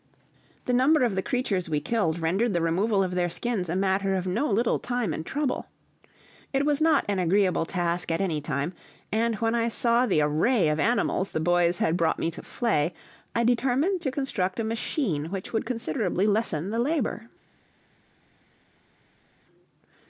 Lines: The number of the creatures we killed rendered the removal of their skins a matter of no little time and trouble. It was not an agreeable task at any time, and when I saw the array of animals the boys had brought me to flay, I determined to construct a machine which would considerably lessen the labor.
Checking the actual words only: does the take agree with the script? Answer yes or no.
yes